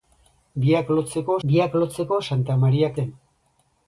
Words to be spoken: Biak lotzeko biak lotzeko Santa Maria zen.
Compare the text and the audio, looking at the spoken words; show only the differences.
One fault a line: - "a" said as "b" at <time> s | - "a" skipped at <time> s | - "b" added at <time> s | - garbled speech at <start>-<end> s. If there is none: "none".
none